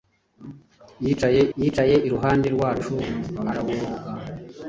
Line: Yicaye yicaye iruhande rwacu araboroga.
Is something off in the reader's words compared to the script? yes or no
no